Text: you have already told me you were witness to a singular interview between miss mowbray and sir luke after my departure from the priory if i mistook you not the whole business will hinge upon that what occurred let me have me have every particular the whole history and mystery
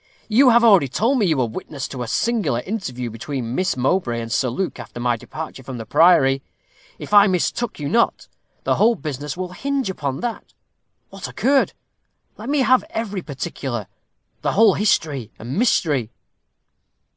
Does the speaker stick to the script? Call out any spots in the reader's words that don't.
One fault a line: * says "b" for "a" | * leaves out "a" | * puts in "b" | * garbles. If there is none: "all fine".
* leaves out "me have"